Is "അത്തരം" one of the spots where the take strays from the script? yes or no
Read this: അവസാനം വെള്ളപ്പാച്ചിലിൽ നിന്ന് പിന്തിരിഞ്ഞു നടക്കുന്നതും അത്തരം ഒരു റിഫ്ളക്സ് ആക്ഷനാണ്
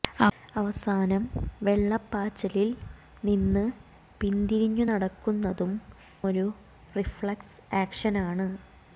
yes